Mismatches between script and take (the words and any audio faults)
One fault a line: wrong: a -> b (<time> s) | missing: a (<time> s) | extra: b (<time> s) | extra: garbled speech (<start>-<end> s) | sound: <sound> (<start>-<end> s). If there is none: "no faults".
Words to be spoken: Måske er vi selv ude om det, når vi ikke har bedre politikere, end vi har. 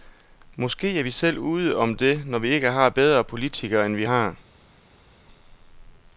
no faults